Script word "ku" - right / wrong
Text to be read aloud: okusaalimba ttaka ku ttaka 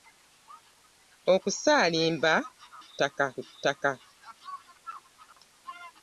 right